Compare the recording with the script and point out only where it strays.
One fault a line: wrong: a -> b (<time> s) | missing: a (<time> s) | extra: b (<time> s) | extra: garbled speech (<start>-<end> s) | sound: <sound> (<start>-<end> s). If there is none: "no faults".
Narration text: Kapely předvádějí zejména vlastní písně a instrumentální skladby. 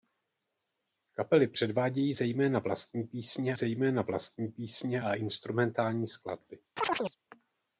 extra: zejména vlastní písně (3.5 s)
sound: chirp (6.8-7.2 s)